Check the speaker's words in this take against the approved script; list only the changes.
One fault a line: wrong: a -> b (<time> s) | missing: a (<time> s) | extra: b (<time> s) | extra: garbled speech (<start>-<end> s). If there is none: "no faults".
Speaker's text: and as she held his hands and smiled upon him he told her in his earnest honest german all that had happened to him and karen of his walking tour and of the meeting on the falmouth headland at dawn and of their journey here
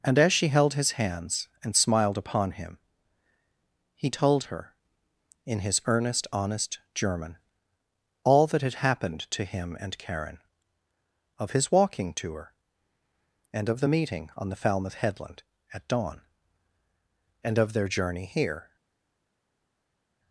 no faults